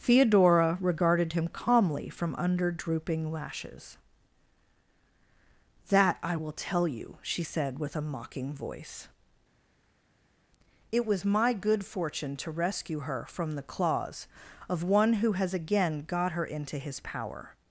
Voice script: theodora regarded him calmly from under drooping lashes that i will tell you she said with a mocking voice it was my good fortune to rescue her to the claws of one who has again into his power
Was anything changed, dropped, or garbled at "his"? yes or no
no